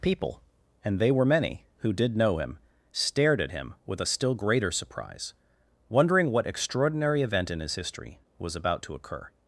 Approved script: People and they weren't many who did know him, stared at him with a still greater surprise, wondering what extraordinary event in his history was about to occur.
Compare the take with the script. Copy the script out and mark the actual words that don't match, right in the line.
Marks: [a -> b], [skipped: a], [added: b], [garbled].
People and they [weren't -> were] many who did know him, stared at him with a still greater surprise, wondering what extraordinary event in his history was about to occur.